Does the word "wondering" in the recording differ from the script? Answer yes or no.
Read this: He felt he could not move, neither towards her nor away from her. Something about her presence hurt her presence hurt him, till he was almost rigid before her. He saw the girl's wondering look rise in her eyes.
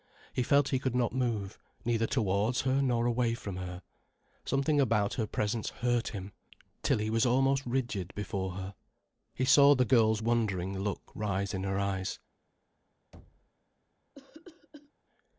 no